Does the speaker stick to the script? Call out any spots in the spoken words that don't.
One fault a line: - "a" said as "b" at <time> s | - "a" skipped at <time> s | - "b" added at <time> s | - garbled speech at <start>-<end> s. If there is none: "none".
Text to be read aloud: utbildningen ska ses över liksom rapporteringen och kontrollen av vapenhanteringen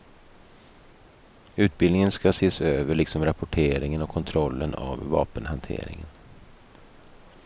none